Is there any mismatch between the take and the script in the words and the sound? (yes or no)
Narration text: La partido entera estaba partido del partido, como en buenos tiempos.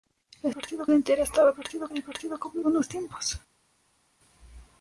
no